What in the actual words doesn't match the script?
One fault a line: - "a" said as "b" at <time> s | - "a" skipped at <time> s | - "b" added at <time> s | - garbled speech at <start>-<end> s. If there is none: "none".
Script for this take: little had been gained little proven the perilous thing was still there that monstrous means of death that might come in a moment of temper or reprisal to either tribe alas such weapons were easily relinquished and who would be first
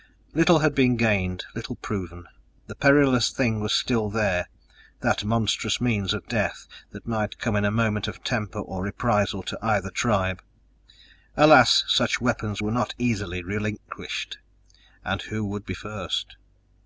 - "not" added at 12.7 s